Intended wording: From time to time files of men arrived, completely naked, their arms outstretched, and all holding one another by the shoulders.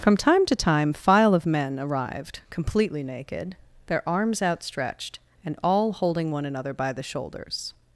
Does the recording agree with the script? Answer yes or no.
no